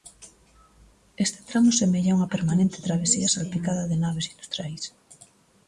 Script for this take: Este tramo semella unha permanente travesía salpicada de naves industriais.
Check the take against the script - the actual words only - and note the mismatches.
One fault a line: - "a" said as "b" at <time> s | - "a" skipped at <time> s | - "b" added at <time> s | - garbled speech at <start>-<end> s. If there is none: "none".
none